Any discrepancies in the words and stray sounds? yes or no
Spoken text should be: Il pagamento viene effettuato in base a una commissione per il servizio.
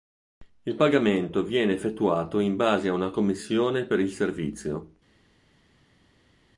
no